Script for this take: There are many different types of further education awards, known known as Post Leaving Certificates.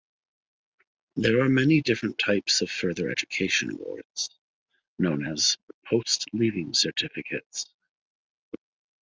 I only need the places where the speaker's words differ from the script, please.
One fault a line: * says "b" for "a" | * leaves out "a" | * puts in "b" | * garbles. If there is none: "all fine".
* leaves out "known"